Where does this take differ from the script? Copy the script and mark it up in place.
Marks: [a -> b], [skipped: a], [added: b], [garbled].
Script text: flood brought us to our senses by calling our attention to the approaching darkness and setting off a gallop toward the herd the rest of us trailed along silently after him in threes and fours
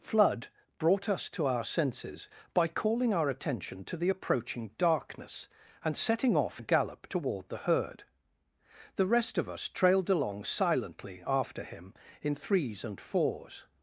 flood brought us to our senses by calling our attention to the approaching darkness and setting off a gallop toward the herd the rest of us trailed along silently after him in threes and fours